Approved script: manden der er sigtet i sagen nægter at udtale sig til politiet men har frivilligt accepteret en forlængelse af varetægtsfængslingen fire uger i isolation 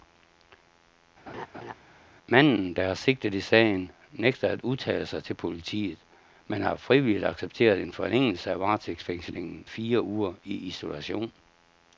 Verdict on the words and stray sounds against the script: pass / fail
fail